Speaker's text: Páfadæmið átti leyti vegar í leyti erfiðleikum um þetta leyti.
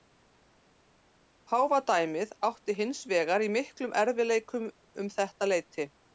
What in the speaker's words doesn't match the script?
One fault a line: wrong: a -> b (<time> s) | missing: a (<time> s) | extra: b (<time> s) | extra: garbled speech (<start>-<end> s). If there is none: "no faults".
wrong: leyti -> hins (2.8 s)
wrong: leyti -> miklum (3.6 s)